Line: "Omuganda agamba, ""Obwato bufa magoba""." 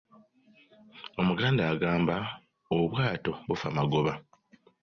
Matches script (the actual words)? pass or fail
pass